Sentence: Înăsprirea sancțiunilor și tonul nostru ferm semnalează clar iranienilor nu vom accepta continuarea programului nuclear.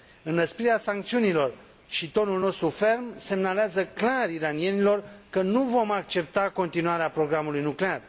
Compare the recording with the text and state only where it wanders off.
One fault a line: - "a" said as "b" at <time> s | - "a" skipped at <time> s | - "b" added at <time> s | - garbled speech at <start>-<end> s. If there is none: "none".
- "că" added at 5.3 s